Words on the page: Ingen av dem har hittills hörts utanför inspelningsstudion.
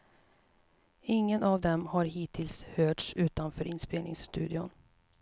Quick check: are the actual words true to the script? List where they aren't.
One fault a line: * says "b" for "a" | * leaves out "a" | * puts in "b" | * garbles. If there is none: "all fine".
all fine